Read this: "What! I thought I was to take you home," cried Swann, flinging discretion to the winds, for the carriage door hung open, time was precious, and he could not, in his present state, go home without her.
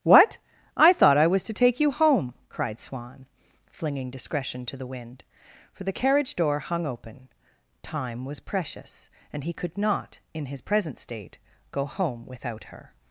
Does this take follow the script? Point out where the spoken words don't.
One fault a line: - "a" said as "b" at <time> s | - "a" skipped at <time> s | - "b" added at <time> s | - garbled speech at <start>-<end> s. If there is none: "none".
- "winds" said as "wind" at 4.9 s